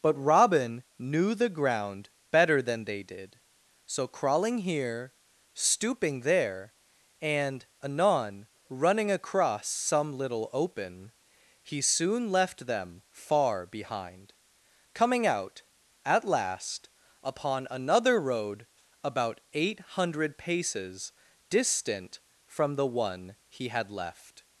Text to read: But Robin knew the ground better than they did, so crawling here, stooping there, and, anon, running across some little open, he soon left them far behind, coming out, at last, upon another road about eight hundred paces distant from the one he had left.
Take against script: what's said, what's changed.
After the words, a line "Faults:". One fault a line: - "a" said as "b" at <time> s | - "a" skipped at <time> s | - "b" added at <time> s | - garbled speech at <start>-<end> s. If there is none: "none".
But Robin knew the ground better than they did, so crawling here, stooping there, and, anon, running across some little open, he soon left them far behind, coming out, at last, upon another road about eight hundred paces distant from the one he had left.
Faults:
none